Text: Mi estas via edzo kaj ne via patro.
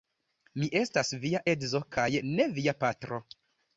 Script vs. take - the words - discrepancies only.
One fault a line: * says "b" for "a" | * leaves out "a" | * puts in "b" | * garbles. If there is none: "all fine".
all fine